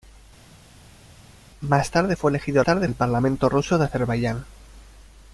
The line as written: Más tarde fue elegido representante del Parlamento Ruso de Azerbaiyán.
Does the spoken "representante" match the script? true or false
false